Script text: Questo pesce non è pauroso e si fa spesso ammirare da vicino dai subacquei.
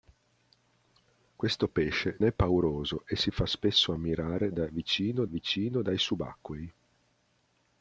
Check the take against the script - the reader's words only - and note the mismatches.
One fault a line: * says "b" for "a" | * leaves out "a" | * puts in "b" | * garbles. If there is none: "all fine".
* leaves out "non"
* puts in "vicino"